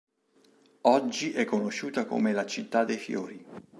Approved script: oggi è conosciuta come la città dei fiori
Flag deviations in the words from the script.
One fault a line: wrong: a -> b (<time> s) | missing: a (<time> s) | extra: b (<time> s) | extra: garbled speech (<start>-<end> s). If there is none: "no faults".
no faults